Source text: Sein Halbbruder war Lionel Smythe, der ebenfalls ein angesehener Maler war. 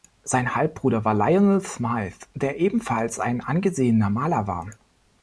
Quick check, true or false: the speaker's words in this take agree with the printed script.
true